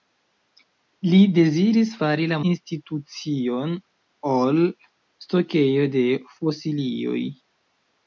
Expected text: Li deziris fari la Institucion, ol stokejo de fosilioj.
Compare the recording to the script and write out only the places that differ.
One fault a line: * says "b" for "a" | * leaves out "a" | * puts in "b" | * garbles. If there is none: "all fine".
all fine